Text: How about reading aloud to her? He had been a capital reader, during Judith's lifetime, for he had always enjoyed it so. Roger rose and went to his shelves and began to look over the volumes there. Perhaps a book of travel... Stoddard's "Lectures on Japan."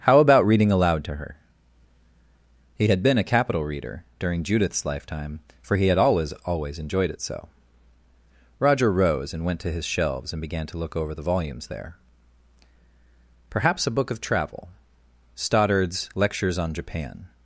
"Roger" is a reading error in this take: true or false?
false